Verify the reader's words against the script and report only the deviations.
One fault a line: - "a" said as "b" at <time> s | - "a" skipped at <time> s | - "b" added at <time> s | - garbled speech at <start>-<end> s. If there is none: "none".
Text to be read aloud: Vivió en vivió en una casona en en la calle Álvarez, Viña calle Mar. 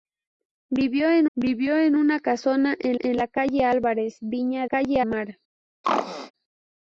none